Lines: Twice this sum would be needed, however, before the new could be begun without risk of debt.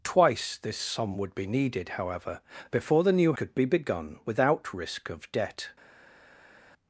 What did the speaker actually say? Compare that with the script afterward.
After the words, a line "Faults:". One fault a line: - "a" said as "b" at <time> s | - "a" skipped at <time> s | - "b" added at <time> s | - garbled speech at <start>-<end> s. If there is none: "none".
Twice this sum would be needed, however, before the new could be begun without risk of debt.
Faults:
none